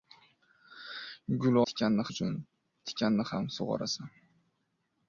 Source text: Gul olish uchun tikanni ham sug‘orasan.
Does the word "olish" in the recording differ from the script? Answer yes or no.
yes